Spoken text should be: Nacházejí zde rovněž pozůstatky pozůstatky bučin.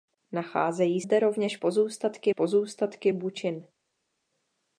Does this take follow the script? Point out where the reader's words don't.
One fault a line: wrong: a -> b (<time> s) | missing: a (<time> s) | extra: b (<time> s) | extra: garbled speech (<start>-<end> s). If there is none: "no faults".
no faults